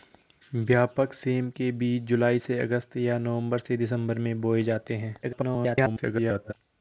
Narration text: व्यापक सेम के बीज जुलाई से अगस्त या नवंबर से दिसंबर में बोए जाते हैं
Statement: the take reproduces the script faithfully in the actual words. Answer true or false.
false